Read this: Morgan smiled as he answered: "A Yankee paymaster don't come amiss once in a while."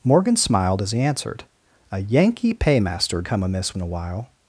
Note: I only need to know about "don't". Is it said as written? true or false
false